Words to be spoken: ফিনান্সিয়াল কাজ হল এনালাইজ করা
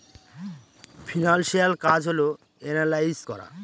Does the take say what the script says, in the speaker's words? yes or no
yes